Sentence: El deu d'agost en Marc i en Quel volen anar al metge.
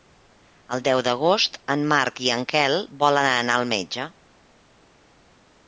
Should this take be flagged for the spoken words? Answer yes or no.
no